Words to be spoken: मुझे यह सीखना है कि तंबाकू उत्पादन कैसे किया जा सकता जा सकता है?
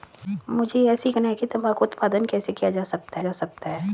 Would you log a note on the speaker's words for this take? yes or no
no